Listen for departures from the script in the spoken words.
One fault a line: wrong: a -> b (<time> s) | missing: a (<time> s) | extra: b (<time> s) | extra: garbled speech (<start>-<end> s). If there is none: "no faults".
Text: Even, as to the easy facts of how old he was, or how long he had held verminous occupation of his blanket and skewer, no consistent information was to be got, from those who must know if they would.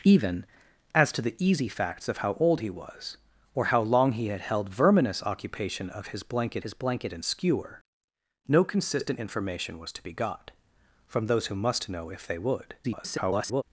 extra: his blanket (6.6 s)
extra: garbled speech (12.8-13.6 s)